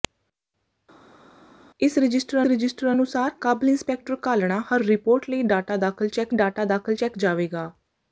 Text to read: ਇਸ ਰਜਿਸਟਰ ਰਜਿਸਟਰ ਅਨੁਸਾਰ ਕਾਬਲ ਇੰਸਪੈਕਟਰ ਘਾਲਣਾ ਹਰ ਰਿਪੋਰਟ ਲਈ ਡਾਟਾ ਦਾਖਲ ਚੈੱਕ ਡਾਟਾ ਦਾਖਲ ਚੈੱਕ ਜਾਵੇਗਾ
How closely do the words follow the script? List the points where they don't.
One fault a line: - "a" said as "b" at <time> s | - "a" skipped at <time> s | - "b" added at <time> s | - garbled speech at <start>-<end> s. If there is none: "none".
none